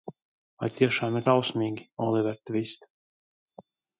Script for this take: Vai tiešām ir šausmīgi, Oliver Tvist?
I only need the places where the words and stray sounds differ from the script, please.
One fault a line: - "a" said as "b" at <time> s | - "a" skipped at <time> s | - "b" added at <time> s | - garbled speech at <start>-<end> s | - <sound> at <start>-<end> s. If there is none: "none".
none